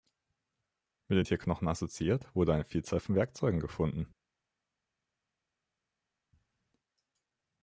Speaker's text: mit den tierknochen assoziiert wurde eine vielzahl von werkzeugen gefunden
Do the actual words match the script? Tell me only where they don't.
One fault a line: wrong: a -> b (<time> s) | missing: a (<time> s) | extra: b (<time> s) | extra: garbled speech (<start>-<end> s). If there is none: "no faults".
no faults